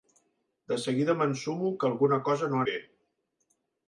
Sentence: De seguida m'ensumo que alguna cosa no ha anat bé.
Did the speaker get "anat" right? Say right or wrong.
wrong